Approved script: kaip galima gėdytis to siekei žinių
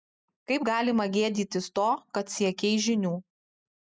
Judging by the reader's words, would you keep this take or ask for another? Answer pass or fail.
fail